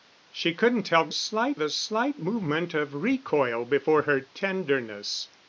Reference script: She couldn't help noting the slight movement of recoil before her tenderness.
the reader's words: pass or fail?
fail